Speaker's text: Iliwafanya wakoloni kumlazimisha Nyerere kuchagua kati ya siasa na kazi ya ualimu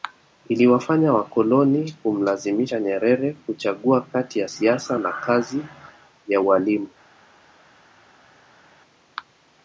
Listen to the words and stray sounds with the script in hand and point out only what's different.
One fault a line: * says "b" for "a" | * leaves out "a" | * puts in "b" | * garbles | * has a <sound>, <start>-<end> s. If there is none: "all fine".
all fine